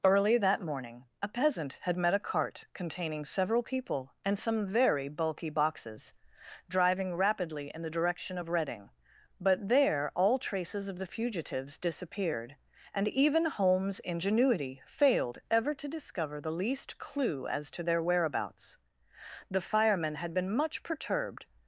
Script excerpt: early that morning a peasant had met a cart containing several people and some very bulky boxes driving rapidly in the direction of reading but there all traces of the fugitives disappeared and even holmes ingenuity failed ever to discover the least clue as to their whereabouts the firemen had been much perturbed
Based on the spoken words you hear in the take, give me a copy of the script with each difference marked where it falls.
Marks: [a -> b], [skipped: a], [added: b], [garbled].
early that morning a peasant had met a cart containing several people and some very bulky boxes driving rapidly in the direction of reading but there all traces of the fugitives disappeared and even holmes ingenuity failed ever to discover the least clue as to their whereabouts the firemen had been much perturbed